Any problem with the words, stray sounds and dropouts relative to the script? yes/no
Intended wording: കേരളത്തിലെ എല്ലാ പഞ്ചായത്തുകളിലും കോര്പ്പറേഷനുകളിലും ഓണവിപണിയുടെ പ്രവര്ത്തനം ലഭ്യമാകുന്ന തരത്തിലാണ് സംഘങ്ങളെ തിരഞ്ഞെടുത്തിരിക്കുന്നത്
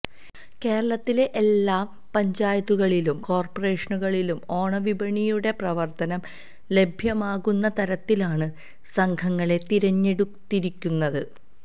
no